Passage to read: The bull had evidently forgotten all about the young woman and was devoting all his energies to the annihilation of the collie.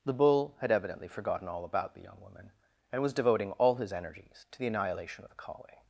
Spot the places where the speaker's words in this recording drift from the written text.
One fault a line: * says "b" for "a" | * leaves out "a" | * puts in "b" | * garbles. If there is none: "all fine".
all fine